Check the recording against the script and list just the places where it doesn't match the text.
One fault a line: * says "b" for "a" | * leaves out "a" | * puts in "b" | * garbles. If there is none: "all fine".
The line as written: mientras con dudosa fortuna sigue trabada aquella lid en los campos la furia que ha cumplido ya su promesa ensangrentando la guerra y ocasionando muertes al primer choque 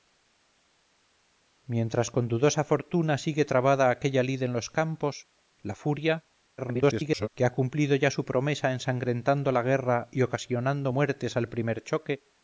* garbles